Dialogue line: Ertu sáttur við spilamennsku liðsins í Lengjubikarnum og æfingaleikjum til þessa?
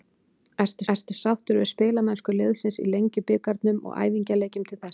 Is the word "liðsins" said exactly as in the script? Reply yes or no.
yes